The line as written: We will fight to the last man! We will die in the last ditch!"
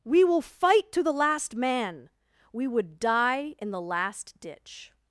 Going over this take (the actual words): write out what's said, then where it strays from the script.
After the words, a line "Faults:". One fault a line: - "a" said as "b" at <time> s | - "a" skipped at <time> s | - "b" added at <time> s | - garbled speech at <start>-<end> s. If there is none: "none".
We will fight to the last man! We would die in the last ditch!"
Faults:
- "will" said as "would" at 2.7 s